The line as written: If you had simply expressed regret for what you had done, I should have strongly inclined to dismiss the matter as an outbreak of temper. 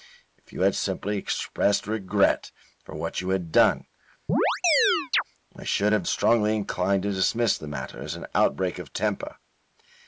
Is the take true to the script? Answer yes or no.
yes